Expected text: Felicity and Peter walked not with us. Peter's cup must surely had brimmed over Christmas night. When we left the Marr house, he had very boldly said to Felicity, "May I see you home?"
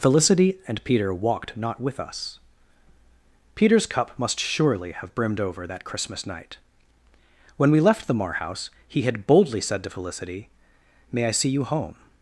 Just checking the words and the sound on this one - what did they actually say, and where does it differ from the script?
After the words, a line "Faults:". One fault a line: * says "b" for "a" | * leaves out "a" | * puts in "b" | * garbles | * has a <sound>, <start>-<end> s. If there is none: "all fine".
Felicity and Peter walked not with us. Peter's cup must surely have brimmed over that Christmas night. When we left the Marr house, he had boldly said to Felicity, "May I see you home?"
Faults:
* says "have" for "had"
* puts in "that"
* leaves out "very"